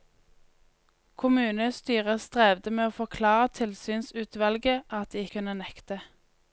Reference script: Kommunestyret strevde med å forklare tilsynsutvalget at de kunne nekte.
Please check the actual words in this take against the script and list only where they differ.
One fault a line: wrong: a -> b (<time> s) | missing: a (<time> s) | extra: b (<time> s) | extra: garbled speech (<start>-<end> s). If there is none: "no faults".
no faults